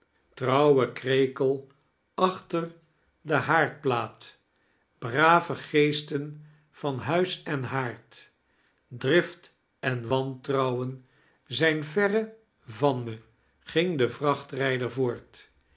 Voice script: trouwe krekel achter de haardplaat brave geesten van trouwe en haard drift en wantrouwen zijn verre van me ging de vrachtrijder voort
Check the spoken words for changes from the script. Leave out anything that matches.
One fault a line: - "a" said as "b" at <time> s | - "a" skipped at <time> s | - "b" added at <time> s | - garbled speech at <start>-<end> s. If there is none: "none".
- "trouwe" said as "huis" at 7.0 s